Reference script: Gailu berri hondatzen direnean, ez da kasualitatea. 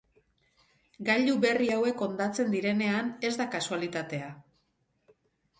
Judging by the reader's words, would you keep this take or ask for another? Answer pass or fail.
fail